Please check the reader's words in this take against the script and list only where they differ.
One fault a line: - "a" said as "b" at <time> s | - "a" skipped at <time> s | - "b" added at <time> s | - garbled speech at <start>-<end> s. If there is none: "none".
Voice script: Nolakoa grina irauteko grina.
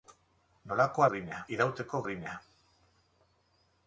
none